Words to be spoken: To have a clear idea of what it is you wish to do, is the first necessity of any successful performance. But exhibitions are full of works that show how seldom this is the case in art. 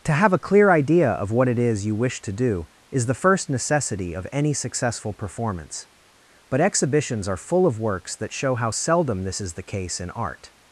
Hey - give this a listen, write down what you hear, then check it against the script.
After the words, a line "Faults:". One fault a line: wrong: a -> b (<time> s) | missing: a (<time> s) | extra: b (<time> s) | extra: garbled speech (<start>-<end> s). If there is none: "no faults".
To have a clear idea of what it is you wish to do, is the first necessity of any successful performance. But exhibitions are full of works that show how seldom this is the case in art.
Faults:
no faults